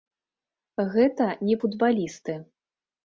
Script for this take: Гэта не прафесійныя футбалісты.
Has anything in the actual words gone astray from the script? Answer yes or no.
yes